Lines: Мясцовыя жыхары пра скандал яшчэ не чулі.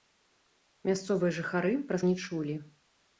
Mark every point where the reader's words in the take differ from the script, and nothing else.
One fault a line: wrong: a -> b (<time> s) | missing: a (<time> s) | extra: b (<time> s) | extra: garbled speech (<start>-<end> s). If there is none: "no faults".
missing: скандал яшчэ (2.0 s)